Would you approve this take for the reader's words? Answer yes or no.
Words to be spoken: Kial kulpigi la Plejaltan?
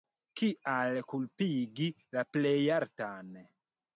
yes